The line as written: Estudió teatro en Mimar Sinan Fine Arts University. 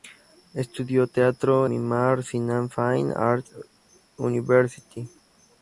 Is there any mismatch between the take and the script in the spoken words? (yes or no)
yes